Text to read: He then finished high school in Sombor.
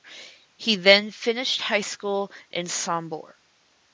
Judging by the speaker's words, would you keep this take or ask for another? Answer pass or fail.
pass